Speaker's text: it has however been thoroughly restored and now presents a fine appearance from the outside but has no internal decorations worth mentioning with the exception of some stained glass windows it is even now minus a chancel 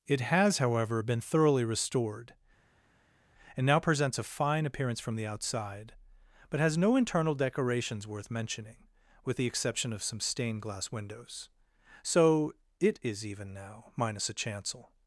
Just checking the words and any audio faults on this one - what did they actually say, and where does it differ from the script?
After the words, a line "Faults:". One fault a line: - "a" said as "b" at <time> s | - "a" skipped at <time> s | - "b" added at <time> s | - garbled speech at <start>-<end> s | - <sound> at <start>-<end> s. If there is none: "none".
it has however been thoroughly restored and now presents a fine appearance from the outside but has no internal decorations worth mentioning with the exception of some stained glass windows so it is even now minus a chancel
Faults:
- "so" added at 12.0 s